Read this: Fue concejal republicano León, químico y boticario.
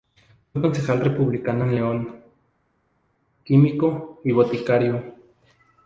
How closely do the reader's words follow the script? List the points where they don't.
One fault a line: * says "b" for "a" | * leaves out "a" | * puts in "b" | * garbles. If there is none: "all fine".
* puts in "en"